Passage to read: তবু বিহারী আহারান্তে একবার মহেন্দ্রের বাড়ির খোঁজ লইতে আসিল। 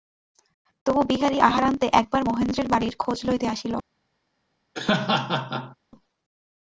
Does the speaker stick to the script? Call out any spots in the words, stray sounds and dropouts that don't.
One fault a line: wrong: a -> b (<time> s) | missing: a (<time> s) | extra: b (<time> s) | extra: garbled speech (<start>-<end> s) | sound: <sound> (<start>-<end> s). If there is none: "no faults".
sound: laugh (4.7-5.8 s)